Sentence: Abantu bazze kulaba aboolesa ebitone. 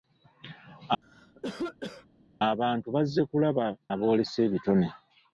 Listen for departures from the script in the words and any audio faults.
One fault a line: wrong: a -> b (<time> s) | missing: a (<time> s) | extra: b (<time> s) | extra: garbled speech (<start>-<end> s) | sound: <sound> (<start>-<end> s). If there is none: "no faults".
sound: cough (1.0-2.1 s)